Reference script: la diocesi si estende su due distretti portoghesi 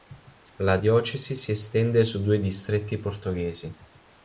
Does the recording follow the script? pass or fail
pass